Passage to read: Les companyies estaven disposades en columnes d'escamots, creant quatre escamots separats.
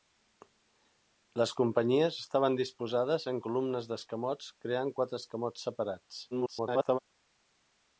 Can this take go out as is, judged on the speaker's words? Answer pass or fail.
fail